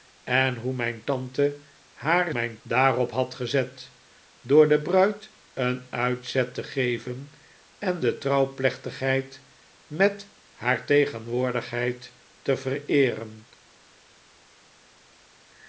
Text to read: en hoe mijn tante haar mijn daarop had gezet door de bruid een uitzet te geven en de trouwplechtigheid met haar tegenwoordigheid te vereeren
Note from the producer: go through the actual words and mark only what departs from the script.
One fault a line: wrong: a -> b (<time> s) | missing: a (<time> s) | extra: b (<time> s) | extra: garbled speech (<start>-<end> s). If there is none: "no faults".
no faults